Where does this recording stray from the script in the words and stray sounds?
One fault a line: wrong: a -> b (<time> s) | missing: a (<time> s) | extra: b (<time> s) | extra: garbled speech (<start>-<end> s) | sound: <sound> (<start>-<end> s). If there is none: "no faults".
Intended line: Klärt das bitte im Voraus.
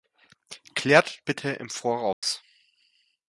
missing: das (1.2 s)
sound: dropout (2.1-2.2 s)